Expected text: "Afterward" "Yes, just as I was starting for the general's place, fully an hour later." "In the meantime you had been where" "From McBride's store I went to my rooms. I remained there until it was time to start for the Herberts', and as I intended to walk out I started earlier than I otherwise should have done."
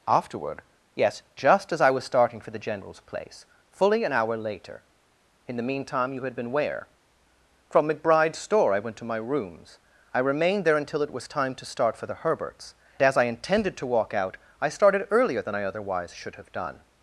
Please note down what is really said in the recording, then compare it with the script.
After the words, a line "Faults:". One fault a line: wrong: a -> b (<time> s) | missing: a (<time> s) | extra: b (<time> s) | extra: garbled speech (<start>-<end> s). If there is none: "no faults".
"Afterward" "Yes, just as I was starting for the general's place, fully an hour later." "In the meantime you had been where" "From McBride's store I went to my rooms. I remained there until it was time to start for the Herberts', as I intended to walk out I started earlier than I otherwise should have done."
Faults:
missing: and (12.7 s)